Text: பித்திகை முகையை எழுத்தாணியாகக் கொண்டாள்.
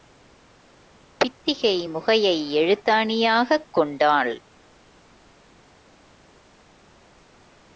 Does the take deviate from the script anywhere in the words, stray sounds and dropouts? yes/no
no